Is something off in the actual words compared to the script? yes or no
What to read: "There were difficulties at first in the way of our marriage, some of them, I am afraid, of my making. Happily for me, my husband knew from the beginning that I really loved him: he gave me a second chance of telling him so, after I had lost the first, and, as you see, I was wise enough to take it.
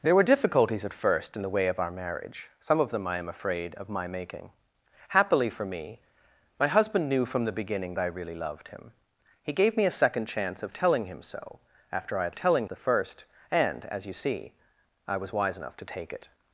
yes